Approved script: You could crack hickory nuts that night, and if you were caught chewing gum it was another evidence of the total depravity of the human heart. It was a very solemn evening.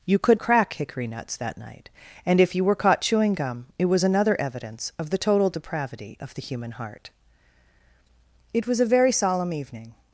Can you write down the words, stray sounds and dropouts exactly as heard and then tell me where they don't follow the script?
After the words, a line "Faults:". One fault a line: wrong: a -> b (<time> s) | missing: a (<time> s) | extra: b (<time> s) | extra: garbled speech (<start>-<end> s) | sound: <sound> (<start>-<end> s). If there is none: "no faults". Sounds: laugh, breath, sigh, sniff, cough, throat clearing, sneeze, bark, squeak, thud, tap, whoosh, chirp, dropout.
You could crack hickory nuts that night, and if you were caught chewing gum it was another evidence of the total depravity of the human heart. It was a very solemn evening.
Faults:
no faults